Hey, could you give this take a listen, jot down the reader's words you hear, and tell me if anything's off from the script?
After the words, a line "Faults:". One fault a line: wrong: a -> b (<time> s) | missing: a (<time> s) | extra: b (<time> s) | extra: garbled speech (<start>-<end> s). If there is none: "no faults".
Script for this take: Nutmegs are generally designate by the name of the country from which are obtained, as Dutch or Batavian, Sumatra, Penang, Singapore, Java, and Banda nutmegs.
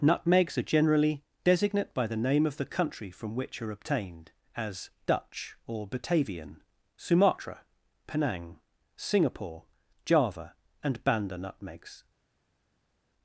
Nutmegs are generally designate by the name of the country from which are obtained, as Dutch or Batavian, Sumatra, Penang, Singapore, Java, and Banda nutmegs.
Faults:
no faults